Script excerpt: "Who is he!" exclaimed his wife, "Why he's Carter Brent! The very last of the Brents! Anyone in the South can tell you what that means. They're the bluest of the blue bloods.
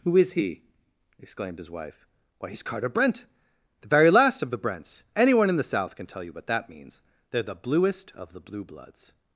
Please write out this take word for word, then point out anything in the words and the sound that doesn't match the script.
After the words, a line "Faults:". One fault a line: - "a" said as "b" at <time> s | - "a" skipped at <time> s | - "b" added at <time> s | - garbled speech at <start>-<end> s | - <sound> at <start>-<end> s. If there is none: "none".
"Who is he!" exclaimed his wife, "Why he's Carter Brent! The very last of the Brents! Anyone in the South can tell you what that means. They're the bluest of the blue bloods.
Faults:
none